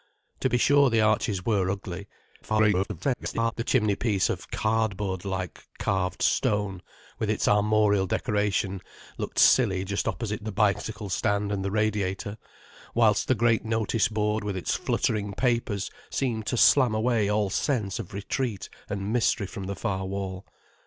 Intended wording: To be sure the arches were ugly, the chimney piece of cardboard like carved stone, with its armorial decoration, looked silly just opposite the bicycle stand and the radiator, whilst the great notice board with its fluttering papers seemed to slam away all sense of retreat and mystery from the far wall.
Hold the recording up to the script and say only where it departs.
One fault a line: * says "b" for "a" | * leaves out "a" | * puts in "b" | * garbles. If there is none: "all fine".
* garbles